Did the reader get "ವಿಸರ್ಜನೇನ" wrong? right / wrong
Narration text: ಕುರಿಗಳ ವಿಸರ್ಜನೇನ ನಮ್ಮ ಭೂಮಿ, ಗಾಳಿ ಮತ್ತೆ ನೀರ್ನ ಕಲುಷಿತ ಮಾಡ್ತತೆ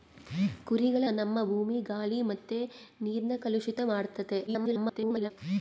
wrong